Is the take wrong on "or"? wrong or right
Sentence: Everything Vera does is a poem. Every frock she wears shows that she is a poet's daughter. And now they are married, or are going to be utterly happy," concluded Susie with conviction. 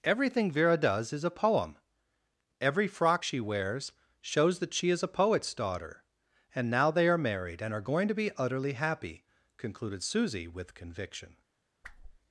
wrong